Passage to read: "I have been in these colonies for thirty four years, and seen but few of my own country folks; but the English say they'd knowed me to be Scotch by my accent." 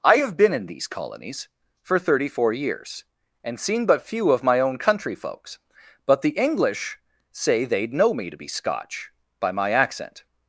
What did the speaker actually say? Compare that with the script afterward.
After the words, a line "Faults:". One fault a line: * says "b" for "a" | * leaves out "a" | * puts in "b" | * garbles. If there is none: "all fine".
"I have been in these colonies for thirty four years, and seen but few of my own country folks; but the English say they'd know me to be Scotch by my accent."
Faults:
* says "know" for "knowed"